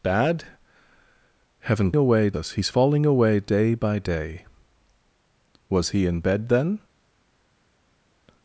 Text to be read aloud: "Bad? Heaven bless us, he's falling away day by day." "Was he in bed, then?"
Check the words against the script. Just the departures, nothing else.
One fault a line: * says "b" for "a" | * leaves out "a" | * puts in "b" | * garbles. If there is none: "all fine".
* says "away" for "bless"